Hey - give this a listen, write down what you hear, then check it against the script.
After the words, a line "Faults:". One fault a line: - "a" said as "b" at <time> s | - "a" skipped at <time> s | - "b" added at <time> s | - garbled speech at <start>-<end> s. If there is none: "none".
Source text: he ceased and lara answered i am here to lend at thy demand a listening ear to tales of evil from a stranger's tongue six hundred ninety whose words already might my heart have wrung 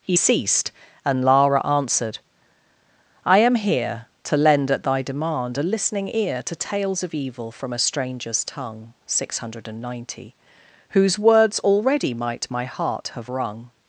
he ceased and lara answered i am here to lend at thy demand a listening ear to tales of evil from a stranger's tongue six hundred ninety whose words already might my heart have wrung
Faults:
none